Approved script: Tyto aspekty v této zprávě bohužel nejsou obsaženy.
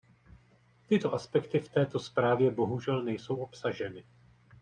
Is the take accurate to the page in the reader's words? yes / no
yes